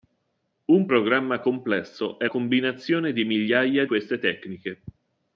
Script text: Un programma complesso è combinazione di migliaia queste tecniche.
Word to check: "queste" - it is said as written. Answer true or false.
true